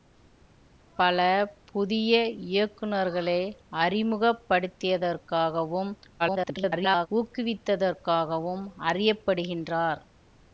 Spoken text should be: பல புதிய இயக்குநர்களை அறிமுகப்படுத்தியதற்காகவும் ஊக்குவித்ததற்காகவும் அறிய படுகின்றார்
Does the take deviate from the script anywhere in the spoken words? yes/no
yes